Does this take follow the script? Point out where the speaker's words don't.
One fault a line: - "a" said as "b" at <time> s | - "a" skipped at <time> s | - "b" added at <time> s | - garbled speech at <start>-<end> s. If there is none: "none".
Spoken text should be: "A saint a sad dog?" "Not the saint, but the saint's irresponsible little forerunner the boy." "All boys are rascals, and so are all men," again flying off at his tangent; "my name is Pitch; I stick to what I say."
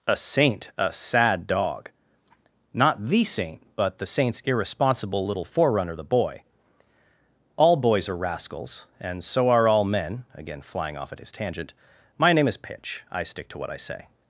none